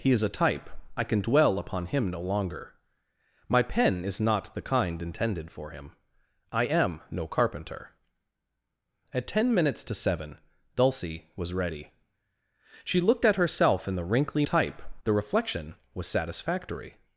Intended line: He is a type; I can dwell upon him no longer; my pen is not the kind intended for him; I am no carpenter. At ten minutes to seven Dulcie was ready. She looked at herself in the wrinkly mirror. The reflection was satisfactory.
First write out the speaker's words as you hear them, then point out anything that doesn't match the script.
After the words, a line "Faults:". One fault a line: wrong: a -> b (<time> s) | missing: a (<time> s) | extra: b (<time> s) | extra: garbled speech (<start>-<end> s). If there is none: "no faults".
He is a type; I can dwell upon him no longer; my pen is not the kind intended for him; I am no carpenter. At ten minutes to seven Dulcie was ready. She looked at herself in the wrinkly type. The reflection was satisfactory.
Faults:
wrong: mirror -> type (14.4 s)